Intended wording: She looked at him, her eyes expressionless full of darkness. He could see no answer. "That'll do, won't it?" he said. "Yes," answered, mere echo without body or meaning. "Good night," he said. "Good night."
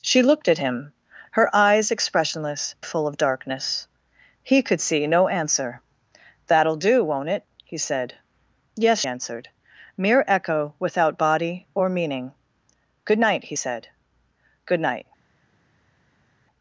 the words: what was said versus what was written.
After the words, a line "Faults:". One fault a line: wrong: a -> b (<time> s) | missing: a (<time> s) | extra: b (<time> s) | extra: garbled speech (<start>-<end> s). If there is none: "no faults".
She looked at him, her eyes expressionless full of darkness. He could see no answer. "That'll do, won't it?" he said. "Yes," answered, mere echo without body or meaning. "Good night," he said. "Good night."
Faults:
no faults